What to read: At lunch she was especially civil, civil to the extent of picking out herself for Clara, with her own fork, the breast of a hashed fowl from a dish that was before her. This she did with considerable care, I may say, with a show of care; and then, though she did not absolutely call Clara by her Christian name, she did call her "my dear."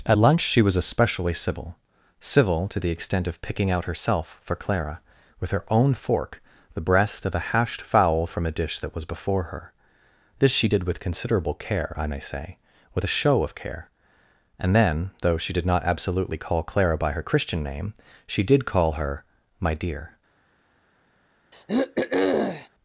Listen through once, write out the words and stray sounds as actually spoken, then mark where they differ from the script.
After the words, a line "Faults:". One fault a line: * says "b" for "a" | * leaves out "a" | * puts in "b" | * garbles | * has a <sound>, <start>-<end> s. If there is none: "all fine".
At lunch she was especially civil, civil to the extent of picking out herself for Clara, with her own fork, the breast of a hashed fowl from a dish that was before her. This she did with considerable care, I may say, with a show of care; and then, though she did not absolutely call Clara by her Christian name, she did call her "my dear."
Faults:
* has a throat clearing, 21.5-22.7 s